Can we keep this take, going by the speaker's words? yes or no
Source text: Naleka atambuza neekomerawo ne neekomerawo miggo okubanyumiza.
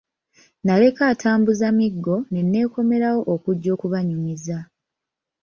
no